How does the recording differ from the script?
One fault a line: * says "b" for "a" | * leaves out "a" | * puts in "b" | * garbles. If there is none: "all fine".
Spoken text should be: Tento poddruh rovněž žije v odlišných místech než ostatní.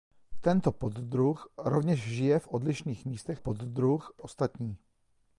* says "poddruh" for "než"